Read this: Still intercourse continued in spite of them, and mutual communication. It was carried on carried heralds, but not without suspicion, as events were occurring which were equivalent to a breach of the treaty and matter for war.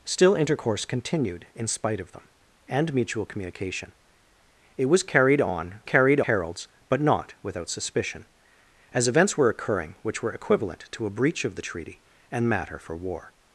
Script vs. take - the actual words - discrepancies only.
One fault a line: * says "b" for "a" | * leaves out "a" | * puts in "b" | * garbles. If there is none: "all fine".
all fine